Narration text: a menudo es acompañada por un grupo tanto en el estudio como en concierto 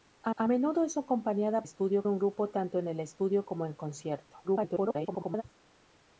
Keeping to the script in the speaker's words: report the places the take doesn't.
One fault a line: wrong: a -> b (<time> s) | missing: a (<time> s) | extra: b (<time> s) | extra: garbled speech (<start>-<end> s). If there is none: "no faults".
extra: a (0.4 s)
wrong: por -> estudio (1.6 s)
extra: garbled speech (4.4-5.4 s)